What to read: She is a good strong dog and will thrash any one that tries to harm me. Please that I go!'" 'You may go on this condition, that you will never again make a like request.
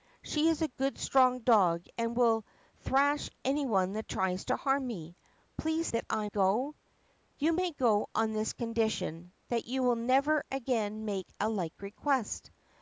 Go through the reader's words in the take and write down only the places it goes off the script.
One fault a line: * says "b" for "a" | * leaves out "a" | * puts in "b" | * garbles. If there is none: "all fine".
all fine